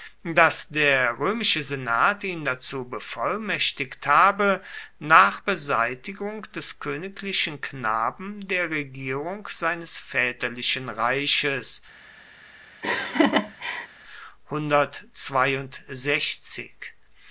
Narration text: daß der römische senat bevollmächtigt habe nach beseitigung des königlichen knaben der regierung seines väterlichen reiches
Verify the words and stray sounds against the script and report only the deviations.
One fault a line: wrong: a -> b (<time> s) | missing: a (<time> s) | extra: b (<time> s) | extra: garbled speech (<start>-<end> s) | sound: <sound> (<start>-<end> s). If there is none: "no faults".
extra: ihn dazu (2.2 s)
sound: laugh (12.8-13.9 s)